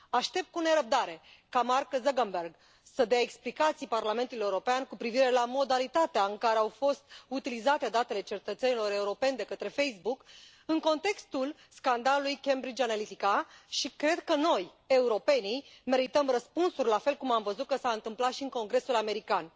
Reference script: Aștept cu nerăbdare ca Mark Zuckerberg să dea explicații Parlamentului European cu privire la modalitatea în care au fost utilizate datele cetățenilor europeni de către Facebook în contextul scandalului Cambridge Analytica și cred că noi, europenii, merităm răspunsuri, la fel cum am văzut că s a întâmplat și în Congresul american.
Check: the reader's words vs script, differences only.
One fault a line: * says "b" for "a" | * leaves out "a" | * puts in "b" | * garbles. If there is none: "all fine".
all fine